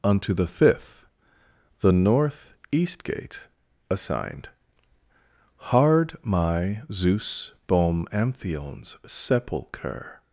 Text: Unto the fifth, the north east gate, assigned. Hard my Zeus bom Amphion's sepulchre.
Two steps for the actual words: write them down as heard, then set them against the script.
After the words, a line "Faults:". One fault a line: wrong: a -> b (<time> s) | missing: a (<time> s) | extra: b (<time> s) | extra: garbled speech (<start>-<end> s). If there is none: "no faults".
Unto the fifth, the north east gate, assigned. Hard my Zeus bom Amphion's sepulchre.
Faults:
no faults